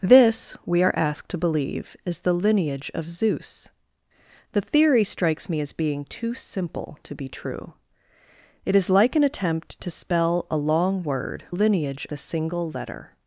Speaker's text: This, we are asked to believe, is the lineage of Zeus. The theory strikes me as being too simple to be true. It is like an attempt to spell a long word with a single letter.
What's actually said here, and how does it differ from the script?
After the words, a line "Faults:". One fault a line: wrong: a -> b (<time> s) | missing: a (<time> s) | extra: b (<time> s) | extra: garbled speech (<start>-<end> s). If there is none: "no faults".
This, we are asked to believe, is the lineage of Zeus. The theory strikes me as being too simple to be true. It is like an attempt to spell a long word lineage a single letter.
Faults:
wrong: with -> lineage (11.5 s)